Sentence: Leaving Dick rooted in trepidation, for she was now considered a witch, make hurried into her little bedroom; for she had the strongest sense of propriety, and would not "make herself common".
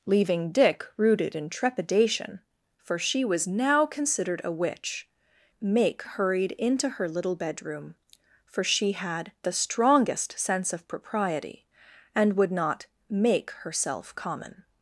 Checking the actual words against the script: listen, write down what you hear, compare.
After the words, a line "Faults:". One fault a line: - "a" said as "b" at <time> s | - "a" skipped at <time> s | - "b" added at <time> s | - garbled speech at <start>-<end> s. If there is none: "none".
Leaving Dick rooted in trepidation, for she was now considered a witch, make hurried into her little bedroom; for she had the strongest sense of propriety, and would not "make herself common".
Faults:
none